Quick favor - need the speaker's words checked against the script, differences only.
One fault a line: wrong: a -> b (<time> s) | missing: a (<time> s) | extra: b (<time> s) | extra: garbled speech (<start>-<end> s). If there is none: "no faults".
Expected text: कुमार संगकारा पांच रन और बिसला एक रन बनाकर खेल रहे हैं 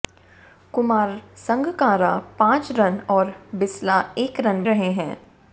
missing: बनाकर खेल (4.6 s)